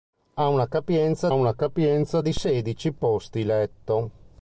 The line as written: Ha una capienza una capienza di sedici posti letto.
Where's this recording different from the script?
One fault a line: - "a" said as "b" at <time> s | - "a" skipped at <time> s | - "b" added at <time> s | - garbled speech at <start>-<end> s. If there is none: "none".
none